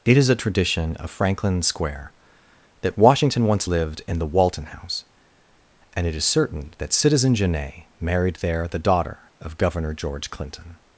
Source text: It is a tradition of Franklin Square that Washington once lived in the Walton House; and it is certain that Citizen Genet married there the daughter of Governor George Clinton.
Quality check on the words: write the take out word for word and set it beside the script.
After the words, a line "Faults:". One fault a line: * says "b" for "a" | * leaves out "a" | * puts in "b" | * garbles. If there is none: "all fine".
It is a tradition of Franklin Square that Washington once lived in the Walton House; and it is certain that Citizen Genet married there the daughter of Governor George Clinton.
Faults:
all fine